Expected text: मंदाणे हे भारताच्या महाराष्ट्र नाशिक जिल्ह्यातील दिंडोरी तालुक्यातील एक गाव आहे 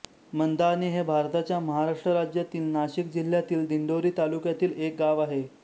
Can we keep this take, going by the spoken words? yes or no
no